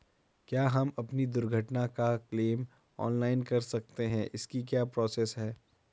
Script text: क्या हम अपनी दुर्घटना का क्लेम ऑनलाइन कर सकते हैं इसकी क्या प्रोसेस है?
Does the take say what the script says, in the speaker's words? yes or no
yes